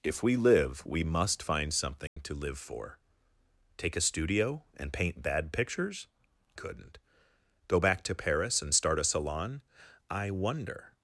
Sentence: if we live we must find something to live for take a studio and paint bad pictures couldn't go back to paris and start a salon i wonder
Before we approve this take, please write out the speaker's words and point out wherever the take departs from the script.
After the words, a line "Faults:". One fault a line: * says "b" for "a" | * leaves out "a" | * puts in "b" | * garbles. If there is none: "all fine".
if we live we must find something to live for take a studio and paint bad pictures couldn't go back to paris and start a salon i wonder
Faults:
all fine